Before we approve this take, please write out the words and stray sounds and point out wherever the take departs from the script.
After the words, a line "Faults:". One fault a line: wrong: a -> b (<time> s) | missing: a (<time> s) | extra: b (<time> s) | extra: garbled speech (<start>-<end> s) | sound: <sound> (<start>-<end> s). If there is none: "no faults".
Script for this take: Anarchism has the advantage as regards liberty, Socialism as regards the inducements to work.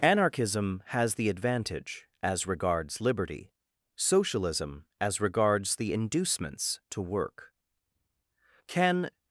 Anarchism has the advantage as regards liberty, Socialism as regards the inducements to work. Can
Faults:
extra: Can (8.7 s)